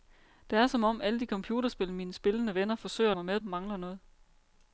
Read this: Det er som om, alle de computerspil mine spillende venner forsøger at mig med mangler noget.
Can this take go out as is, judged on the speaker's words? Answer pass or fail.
pass